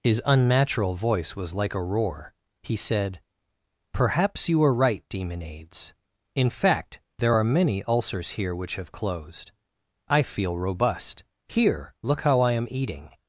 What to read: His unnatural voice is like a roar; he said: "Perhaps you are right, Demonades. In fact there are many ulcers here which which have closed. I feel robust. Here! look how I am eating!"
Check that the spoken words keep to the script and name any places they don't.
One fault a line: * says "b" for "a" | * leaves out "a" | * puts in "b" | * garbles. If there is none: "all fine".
* says "was" for "is"
* leaves out "which"